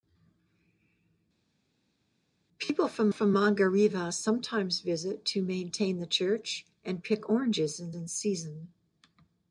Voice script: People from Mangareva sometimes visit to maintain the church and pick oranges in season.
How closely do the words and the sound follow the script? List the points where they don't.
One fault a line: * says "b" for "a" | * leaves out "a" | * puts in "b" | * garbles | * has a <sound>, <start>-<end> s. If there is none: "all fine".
* puts in "from"
* puts in "in"